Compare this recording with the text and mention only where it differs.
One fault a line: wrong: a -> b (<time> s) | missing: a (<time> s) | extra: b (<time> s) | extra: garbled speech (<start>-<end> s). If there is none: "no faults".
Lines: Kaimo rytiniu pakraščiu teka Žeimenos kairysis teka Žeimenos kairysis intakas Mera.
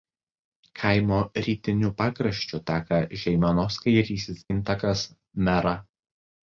missing: teka Žeimenos kairysis (4.5 s)